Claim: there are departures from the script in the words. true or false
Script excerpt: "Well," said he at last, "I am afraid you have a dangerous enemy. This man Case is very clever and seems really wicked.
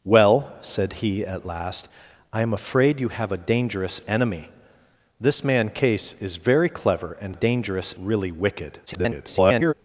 true